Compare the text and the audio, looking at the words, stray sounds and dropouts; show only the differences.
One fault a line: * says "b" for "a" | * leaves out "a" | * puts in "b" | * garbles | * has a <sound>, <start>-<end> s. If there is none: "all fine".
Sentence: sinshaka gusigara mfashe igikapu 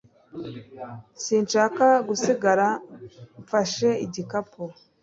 all fine